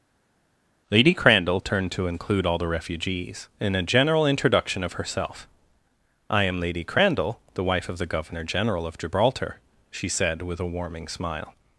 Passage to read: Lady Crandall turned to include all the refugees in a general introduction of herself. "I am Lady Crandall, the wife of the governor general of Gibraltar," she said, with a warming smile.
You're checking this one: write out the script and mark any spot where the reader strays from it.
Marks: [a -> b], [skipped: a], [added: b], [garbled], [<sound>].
Lady Crandall turned to include all the refugees in a general introduction of herself. "I am Lady Crandall, the wife of the governor general of Gibraltar," she said, with a warming smile.